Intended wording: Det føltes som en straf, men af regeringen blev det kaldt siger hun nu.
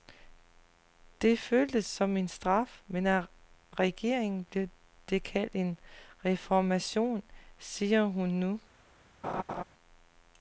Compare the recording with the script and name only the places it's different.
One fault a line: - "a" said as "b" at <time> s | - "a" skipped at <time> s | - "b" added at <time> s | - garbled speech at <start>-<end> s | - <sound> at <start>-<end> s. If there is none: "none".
- "en reformation" added at 5.6 s
- laugh at 9.2-9.6 s